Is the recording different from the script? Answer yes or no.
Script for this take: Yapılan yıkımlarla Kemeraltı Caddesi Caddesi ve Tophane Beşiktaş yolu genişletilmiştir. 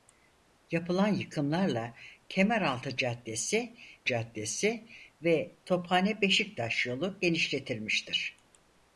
no